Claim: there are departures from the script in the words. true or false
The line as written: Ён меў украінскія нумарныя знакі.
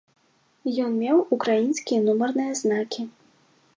false